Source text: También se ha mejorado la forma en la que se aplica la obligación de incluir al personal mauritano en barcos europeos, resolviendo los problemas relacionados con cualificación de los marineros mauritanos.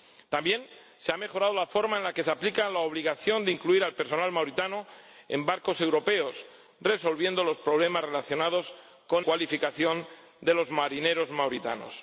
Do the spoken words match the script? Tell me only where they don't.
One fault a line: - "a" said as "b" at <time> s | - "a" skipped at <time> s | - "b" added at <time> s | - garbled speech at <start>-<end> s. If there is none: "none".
none